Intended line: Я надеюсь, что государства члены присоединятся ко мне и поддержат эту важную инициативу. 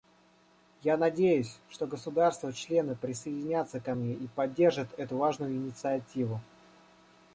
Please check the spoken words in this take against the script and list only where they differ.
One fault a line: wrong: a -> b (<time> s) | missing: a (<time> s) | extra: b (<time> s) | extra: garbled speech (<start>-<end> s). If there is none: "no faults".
no faults